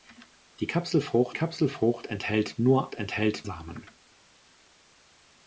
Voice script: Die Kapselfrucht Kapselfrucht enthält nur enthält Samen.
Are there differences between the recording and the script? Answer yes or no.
no